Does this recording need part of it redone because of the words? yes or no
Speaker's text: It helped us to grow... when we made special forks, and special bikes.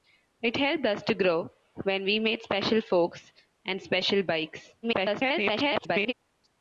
yes